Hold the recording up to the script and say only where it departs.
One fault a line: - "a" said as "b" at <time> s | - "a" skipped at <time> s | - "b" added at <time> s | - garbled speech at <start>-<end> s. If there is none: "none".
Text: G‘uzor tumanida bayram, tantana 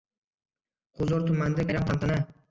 none